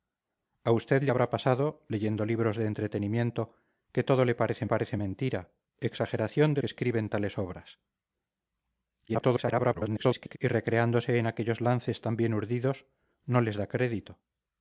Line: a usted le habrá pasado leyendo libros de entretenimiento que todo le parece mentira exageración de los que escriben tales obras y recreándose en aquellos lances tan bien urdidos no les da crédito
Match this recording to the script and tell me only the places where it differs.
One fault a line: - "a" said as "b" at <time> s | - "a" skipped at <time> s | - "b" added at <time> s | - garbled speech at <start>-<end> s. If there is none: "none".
- "parece" added at 4.7 s
- "los" skipped at 6.6 s
- garbled speech at 9.1-10.4 s